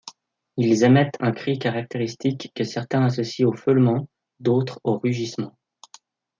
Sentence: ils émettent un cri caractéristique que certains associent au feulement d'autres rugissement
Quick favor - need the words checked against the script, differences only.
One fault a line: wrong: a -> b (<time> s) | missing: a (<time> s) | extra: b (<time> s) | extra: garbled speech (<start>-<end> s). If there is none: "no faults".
extra: au (4.8 s)